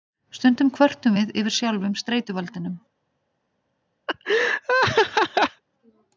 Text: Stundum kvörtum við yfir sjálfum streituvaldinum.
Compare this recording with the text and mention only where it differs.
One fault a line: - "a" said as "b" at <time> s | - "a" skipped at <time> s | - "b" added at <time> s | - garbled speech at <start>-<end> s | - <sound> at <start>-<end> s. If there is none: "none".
- laugh at 4.1-5.6 s